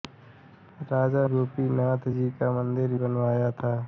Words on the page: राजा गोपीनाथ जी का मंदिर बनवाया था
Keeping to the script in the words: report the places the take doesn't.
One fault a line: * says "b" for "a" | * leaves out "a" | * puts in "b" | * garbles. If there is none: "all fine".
all fine